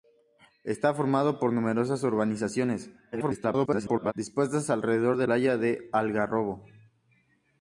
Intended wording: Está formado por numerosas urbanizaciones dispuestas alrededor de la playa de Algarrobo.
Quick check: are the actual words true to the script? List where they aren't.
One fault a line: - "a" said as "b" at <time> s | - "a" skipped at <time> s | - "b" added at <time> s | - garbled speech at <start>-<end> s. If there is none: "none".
- garbled speech at 3.1-4.1 s
- "la" skipped at 5.3 s